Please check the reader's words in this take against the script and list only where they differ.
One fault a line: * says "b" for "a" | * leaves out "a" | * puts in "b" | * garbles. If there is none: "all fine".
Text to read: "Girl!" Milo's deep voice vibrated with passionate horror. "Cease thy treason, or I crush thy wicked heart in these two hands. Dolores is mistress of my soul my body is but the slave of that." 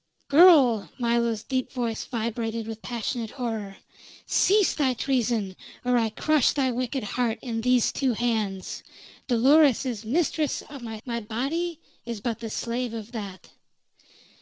* leaves out "soul"